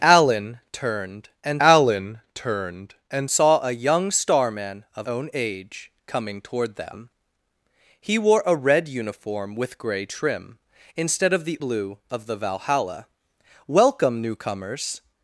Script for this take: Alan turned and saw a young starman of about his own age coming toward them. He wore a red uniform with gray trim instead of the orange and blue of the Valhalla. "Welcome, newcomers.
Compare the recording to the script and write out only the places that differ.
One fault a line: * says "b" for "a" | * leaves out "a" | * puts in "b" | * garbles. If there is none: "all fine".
* puts in "alan turned and"
* leaves out "about his"
* leaves out "orange and"